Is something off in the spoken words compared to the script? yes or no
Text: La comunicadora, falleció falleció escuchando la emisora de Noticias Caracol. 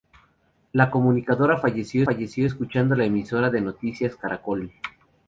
no